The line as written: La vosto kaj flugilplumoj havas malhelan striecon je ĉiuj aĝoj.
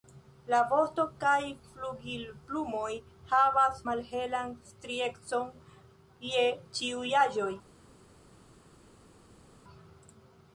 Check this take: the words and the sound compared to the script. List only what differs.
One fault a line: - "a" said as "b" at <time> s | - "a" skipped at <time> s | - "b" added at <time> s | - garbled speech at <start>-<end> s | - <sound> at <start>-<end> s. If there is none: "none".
none